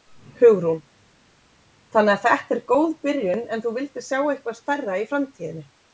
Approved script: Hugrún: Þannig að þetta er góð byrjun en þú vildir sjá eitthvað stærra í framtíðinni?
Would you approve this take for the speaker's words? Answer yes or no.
yes